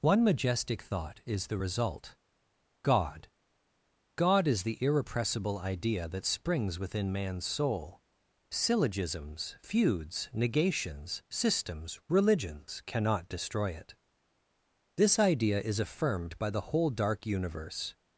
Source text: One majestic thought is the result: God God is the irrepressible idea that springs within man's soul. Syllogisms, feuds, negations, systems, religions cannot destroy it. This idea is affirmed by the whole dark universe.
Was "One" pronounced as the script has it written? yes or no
yes